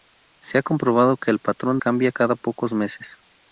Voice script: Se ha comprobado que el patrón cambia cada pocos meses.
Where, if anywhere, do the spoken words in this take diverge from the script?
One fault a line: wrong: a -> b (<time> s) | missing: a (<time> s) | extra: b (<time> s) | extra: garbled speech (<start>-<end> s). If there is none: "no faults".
no faults